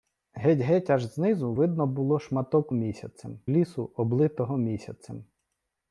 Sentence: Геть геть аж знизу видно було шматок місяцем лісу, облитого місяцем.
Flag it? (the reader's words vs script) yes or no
no